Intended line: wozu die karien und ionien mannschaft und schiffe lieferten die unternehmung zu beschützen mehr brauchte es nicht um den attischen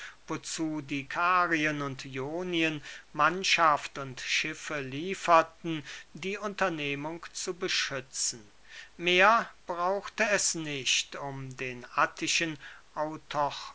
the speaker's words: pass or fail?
pass